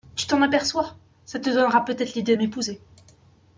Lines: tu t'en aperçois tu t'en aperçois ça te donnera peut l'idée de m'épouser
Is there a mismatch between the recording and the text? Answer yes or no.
yes